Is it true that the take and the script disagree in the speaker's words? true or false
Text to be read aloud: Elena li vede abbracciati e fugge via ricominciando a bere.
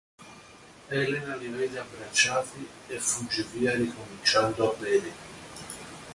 false